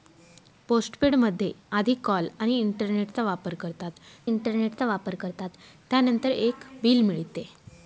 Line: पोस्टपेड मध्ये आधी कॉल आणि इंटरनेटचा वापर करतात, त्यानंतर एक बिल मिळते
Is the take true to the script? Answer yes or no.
no